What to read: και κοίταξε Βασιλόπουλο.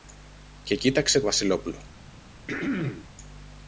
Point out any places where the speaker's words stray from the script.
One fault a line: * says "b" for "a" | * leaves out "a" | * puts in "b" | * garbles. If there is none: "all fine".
all fine